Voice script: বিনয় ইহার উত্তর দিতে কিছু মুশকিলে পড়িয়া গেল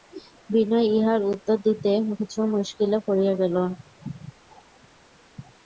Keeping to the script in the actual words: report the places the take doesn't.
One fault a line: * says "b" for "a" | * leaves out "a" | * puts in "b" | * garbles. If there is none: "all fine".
all fine